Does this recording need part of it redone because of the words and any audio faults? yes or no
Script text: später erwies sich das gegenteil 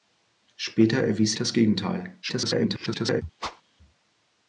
yes